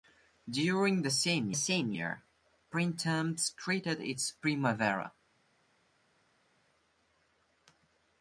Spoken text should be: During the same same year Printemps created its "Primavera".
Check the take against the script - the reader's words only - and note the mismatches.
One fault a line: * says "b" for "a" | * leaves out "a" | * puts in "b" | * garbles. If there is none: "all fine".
all fine